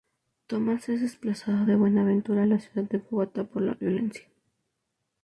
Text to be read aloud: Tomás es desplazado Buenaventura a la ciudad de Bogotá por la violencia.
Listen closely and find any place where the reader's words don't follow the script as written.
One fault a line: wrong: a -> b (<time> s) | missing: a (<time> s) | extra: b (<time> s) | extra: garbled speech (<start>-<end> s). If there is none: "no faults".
extra: de (1.7 s)